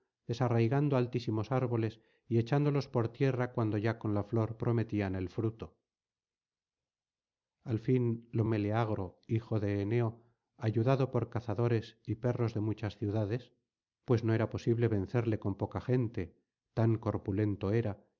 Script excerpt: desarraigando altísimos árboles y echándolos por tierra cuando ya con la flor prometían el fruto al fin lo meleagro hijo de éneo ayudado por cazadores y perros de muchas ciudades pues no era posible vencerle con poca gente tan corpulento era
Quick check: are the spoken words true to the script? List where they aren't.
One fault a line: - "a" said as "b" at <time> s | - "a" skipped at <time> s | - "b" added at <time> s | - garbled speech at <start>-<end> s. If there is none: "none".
none